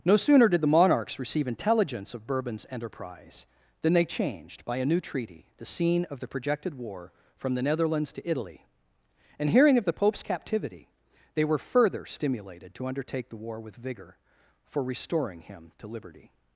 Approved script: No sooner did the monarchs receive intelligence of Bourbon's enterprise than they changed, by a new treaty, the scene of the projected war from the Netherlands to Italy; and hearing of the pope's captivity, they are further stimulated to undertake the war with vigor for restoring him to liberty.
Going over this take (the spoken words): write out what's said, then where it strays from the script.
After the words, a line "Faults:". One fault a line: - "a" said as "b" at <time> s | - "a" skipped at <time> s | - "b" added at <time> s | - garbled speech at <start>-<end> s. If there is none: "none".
No sooner did the monarchs receive intelligence of Bourbon's enterprise than they changed, by a new treaty, the scene of the projected war from the Netherlands to Italy; and hearing of the pope's captivity, they were further stimulated to undertake the war with vigor for restoring him to liberty.
Faults:
- "are" said as "were" at 11.4 s